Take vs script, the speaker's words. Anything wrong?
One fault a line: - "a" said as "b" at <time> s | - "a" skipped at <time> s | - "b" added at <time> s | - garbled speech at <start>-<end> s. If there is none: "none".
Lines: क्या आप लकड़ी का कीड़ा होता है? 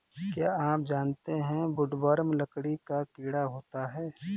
- "जानते है वुडवर्म" added at 0.8 s